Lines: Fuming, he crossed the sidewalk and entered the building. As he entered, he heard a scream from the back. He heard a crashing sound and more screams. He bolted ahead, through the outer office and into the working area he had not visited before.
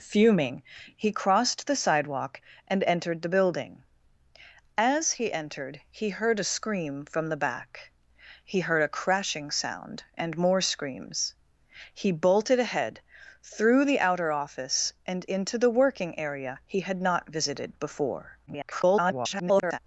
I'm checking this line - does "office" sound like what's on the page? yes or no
yes